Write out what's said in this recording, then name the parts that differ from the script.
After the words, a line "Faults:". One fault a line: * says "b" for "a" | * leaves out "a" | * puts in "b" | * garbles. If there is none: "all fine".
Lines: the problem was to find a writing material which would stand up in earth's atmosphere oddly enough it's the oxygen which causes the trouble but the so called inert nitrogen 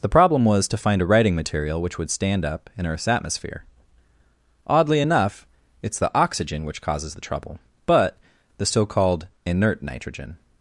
the problem was to find a writing material which would stand up in earth's atmosphere oddly enough it's the oxygen which causes the trouble but the so called inert nitrogen
Faults:
all fine